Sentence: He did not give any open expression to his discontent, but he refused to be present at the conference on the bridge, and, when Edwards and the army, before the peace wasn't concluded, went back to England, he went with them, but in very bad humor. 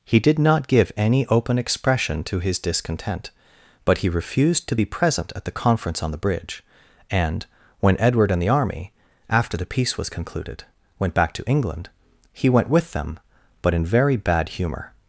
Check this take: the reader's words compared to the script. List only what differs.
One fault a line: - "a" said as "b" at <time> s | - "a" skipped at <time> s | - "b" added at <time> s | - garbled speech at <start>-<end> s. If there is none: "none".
- "Edwards" said as "Edward" at 8.0 s
- "before" said as "after" at 9.3 s
- "wasn't" said as "was" at 10.0 s